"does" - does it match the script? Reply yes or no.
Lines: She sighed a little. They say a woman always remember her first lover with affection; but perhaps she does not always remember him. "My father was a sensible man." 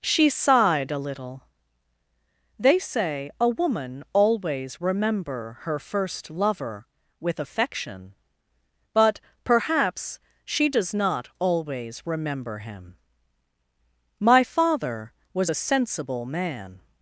yes